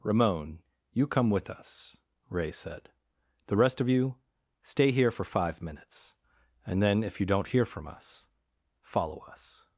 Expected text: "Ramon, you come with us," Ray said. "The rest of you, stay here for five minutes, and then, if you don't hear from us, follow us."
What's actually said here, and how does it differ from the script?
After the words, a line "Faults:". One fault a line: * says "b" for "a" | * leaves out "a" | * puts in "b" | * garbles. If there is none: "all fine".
"Ramon, you come with us," Ray said. "The rest of you, stay here for five minutes, and then, if you don't hear from us, follow us."
Faults:
all fine